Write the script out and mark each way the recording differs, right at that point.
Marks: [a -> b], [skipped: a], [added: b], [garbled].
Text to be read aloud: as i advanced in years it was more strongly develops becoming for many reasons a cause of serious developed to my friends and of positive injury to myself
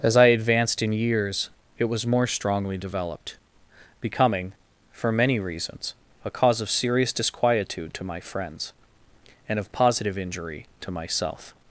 as i advanced in years it was more strongly [develops -> developed] becoming for many reasons a cause of serious [developed -> disquietude] to my friends and of positive injury to myself